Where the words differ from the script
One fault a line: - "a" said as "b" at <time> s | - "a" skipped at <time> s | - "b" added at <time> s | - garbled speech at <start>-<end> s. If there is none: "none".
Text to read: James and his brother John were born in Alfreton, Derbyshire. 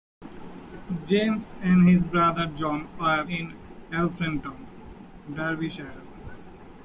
- "born" skipped at 3.2 s